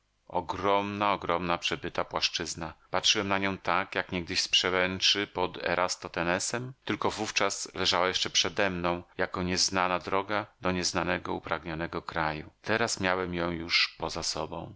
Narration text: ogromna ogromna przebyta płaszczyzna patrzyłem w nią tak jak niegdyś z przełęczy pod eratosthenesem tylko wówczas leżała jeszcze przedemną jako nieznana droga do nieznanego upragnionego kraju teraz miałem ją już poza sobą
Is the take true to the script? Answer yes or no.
no